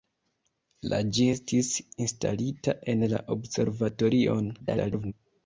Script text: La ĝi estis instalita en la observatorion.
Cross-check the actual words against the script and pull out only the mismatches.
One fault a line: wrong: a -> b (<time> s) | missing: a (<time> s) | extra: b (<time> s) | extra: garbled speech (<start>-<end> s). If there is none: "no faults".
extra: garbled speech (4.6-5.1 s)